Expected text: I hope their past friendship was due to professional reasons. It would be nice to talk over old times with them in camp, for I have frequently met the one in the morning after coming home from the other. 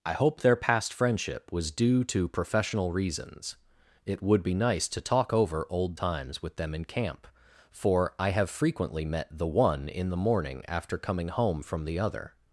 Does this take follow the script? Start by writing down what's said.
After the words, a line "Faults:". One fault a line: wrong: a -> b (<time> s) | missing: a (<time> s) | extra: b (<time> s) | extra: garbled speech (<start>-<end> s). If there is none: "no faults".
I hope their past friendship was due to professional reasons. It would be nice to talk over old times with them in camp, for I have frequently met the one in the morning after coming home from the other.
Faults:
no faults